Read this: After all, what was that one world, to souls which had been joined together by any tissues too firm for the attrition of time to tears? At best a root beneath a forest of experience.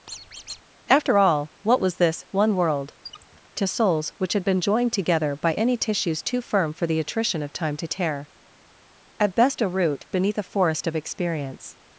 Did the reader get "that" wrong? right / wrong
wrong